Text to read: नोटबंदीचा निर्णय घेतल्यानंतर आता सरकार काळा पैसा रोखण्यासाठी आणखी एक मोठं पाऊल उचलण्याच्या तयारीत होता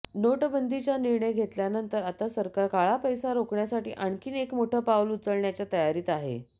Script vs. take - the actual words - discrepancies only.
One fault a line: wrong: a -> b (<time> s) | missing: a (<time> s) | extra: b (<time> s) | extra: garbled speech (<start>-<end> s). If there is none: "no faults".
wrong: होता -> आहे (6.1 s)